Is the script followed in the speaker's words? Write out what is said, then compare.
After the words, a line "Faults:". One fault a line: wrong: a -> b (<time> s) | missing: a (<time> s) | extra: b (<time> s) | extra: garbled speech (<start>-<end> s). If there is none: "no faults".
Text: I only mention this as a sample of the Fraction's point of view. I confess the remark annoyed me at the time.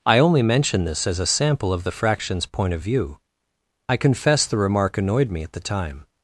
I only mention this as a sample of the Fraction's point of view. I confess the remark annoyed me at the time.
Faults:
no faults